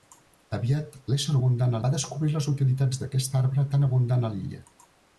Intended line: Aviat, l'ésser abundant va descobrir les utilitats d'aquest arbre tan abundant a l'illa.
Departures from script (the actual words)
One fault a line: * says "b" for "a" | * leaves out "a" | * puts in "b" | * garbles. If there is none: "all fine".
all fine